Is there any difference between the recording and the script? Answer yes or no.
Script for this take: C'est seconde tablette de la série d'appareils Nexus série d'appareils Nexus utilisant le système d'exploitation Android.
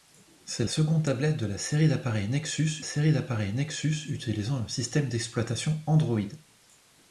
no